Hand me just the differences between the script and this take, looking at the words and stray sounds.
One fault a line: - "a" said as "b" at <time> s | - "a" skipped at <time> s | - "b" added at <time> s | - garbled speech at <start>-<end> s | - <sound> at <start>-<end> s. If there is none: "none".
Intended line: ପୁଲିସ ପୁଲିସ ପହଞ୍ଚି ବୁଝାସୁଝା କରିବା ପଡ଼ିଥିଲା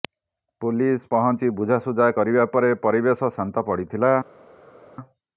- "ପୁଲିସ" skipped at 1.0 s
- "ପରେ ପରିବେଶ ଶାନ୍ତ" added at 2.5 s